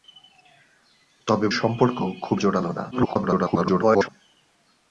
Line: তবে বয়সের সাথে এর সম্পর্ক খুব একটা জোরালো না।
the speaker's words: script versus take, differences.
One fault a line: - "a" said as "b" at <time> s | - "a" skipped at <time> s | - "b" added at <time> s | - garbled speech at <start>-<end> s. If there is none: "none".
- "বয়সের সাথে এর" skipped at 1.5 s
- "একটা" skipped at 2.4 s
- garbled speech at 2.9-4.1 s